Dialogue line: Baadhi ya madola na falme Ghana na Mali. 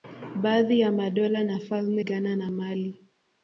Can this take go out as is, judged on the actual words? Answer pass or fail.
pass